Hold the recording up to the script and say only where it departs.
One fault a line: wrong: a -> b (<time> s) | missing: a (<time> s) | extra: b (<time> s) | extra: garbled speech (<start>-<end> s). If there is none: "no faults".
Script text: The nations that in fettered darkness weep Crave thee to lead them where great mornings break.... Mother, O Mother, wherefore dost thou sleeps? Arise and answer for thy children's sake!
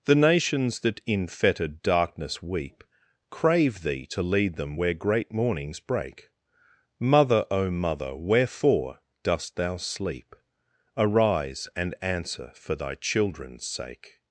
wrong: sleeps -> sleep (9.8 s)